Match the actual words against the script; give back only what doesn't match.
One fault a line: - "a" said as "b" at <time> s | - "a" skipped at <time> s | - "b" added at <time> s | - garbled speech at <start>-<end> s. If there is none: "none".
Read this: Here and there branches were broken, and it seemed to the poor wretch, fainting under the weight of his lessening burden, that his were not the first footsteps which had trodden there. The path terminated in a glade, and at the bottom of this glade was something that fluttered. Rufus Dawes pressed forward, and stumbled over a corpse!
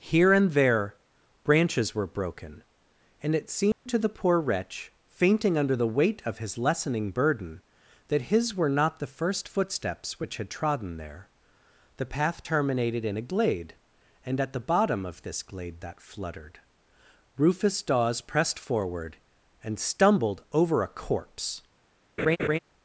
- "was something" skipped at 15.8 s